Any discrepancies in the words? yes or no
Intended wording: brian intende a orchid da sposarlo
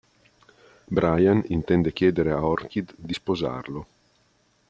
yes